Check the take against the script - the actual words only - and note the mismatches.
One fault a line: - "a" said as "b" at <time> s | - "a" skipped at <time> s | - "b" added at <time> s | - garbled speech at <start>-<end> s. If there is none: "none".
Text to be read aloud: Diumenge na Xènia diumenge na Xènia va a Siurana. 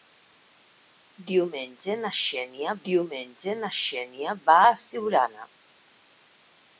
none